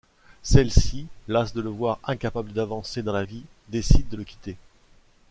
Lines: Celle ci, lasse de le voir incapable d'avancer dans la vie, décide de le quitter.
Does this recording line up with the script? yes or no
yes